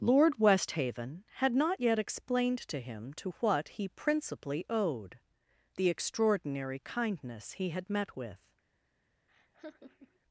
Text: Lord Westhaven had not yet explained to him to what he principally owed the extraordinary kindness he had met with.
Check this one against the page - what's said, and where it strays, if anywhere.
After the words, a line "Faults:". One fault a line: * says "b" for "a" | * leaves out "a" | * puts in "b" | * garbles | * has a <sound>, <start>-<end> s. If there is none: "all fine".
Lord Westhaven had not yet explained to him to what he principally owed the extraordinary kindness he had met with.
Faults:
* has a laugh, 9.3-10.2 s